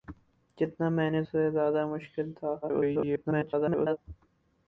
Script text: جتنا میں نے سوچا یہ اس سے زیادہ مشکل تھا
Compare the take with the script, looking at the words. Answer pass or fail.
fail